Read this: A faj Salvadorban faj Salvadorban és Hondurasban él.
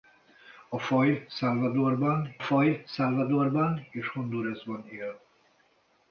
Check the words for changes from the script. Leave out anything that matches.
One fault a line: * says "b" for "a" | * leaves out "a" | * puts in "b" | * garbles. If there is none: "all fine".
all fine